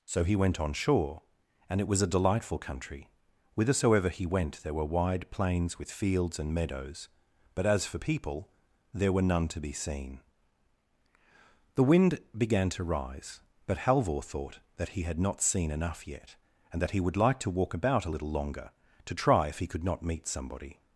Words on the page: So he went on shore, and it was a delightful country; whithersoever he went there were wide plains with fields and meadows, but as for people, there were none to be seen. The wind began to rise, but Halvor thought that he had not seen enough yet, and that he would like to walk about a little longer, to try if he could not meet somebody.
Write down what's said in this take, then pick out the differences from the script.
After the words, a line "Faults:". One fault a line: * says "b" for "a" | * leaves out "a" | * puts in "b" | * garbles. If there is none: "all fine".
So he went on shore, and it was a delightful country; whithersoever he went there were wide plains with fields and meadows, but as for people, there were none to be seen. The wind began to rise, but Halvor thought that he had not seen enough yet, and that he would like to walk about a little longer, to try if he could not meet somebody.
Faults:
all fine